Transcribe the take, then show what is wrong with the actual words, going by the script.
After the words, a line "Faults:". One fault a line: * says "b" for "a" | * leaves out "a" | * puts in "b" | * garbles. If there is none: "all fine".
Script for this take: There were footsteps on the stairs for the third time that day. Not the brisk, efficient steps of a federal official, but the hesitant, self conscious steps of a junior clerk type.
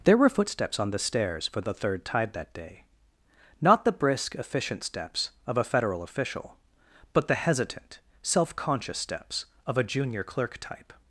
There were footsteps on the stairs for the third tide that day. Not the brisk, efficient steps of a federal official, but the hesitant, self conscious steps of a junior clerk type.
Faults:
* says "tide" for "time"